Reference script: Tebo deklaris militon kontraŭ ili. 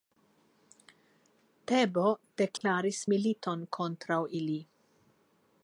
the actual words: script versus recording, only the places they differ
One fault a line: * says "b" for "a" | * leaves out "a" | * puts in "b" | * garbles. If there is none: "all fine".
all fine